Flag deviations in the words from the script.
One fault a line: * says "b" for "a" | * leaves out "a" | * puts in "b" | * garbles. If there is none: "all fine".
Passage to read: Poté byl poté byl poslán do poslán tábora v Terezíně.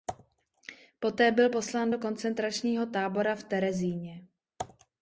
* leaves out "poté byl"
* says "koncentračního" for "poslán"